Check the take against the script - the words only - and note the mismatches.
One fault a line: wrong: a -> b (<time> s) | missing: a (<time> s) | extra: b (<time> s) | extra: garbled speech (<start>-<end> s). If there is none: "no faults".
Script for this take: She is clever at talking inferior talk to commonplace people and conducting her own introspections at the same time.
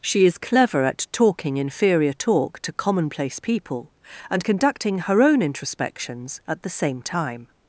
no faults